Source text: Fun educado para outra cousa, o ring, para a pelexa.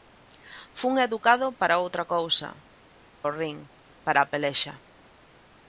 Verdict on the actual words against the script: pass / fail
pass